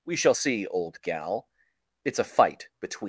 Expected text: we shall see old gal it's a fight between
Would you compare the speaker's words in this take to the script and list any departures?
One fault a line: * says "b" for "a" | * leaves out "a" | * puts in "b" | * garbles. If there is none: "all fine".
all fine